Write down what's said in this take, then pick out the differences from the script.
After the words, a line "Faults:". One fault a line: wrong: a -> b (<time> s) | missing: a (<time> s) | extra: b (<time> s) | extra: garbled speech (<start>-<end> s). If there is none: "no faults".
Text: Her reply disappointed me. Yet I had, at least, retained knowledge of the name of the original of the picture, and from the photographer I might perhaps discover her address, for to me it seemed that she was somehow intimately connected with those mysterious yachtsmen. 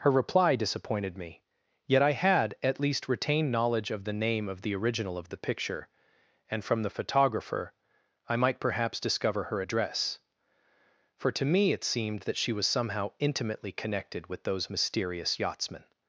Her reply disappointed me. Yet I had, at least, retained knowledge of the name of the original of the picture, and from the photographer I might perhaps discover her address, for to me it seemed that she was somehow intimately connected with those mysterious yachtsmen.
Faults:
no faults